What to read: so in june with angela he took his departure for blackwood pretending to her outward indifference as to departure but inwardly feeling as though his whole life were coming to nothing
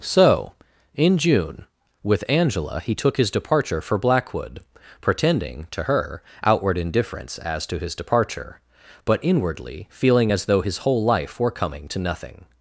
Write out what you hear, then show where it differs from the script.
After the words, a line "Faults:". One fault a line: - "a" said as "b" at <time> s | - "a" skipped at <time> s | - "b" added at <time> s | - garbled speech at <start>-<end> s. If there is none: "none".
so in june with angela he took his departure for blackwood pretending to her outward indifference as to his departure but inwardly feeling as though his whole life were coming to nothing
Faults:
- "his" added at 7.8 s